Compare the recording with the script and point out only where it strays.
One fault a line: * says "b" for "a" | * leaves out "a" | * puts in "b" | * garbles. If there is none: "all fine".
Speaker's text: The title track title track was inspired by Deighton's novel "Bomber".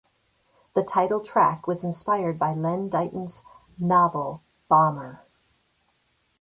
* leaves out "title track"
* puts in "Len"